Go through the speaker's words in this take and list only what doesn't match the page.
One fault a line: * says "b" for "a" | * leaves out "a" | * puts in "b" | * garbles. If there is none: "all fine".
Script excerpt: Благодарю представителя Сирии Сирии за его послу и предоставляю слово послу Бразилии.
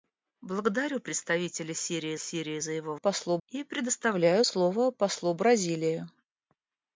all fine